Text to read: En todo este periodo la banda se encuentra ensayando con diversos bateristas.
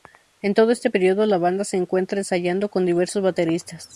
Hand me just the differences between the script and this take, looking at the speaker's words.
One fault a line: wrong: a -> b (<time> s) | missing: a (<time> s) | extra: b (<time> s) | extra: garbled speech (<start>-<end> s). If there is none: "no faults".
no faults